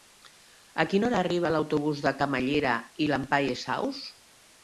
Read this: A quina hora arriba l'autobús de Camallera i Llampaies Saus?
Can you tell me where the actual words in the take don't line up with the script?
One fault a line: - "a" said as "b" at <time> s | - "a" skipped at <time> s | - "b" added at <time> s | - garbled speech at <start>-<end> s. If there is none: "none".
none